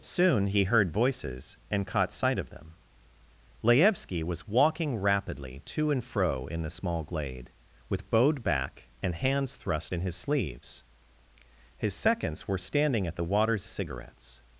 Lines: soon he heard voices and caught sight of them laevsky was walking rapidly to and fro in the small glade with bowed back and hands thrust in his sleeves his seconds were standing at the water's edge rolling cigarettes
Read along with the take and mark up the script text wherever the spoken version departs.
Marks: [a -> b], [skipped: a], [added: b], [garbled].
soon he heard voices and caught sight of them laevsky was walking rapidly to and fro in the small glade with bowed back and hands thrust in his sleeves his seconds were standing at the water's [skipped: edge rolling] cigarettes